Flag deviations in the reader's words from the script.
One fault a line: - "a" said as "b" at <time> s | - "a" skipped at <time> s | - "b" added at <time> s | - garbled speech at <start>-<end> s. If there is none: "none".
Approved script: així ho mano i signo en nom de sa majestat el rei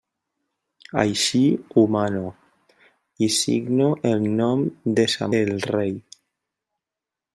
- "majestat" skipped at 5.3 s